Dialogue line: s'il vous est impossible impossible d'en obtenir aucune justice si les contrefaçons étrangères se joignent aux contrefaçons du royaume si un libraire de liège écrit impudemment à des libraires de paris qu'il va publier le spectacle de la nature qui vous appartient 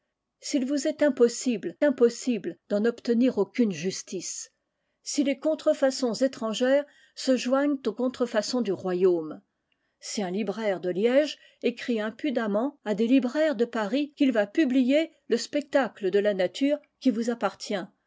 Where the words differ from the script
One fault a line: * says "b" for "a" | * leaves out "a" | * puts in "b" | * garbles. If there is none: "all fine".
all fine